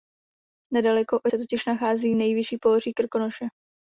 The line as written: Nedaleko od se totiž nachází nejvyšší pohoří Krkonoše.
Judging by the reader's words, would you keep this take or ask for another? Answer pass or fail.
pass